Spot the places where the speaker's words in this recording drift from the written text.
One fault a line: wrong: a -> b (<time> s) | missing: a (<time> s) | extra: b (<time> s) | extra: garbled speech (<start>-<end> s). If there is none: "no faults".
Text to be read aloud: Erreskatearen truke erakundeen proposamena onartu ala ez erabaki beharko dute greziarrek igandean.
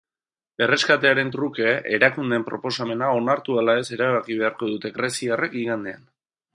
no faults